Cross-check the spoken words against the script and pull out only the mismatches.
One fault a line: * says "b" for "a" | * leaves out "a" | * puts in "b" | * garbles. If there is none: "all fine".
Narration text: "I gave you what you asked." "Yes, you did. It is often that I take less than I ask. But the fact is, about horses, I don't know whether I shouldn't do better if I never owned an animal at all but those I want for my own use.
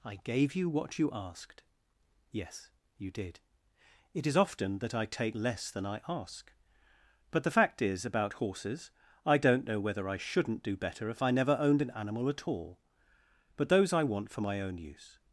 all fine